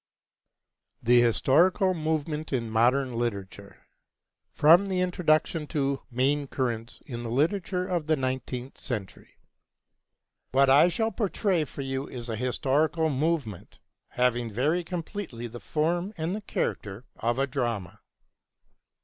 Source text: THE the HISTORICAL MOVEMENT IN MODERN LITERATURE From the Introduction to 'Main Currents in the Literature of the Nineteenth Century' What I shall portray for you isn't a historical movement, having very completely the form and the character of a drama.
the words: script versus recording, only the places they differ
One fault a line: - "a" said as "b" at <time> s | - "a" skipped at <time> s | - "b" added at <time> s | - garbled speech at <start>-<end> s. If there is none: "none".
- "the" skipped at 1.2 s
- "isn't" said as "is" at 12.1 s